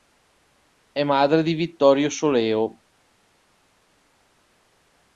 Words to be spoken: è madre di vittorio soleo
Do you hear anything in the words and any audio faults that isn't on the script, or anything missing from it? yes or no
no